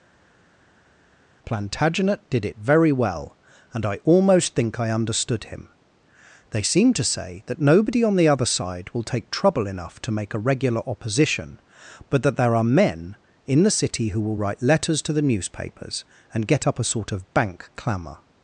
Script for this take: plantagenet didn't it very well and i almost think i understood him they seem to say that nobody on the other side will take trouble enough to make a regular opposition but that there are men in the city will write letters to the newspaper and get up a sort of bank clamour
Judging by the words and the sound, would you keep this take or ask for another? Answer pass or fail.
fail